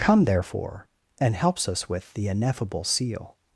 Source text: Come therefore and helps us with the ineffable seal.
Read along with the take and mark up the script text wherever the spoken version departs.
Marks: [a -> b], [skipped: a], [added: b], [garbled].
Come therefore and helps us with the ineffable seal.